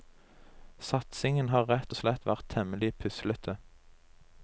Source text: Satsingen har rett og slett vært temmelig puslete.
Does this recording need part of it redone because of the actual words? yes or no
no